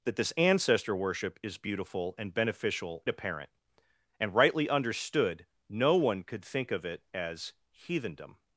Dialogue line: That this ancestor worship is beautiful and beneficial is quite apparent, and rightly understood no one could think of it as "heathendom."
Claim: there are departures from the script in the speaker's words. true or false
true